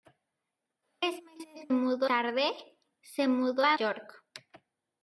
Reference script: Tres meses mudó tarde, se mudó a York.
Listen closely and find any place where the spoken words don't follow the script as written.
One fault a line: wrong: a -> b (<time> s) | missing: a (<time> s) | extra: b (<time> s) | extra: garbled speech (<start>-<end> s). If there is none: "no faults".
no faults